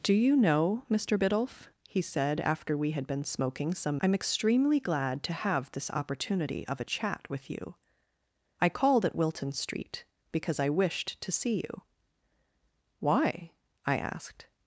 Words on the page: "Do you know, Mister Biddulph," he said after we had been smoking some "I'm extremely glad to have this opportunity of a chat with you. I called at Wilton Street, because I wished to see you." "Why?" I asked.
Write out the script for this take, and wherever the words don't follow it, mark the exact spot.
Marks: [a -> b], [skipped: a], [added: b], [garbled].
"Do you know, Mister Biddulph," he said after we had been smoking some "I'm extremely glad to have this opportunity of a chat with you. I called at Wilton Street, because I wished to see you." "Why?" I asked.